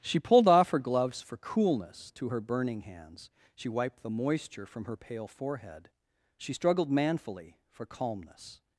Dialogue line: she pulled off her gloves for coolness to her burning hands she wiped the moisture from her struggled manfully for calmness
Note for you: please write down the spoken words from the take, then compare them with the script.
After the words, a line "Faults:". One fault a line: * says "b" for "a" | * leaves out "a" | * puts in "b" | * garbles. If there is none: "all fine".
she pulled off her gloves for coolness to her burning hands she wiped the moisture from her pale forehead she struggled manfully for calmness
Faults:
* puts in "pale forehead she"